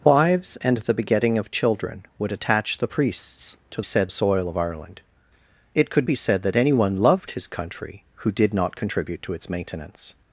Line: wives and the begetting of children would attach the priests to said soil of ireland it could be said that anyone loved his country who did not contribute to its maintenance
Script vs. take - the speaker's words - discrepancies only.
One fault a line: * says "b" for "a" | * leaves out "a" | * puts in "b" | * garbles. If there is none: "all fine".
all fine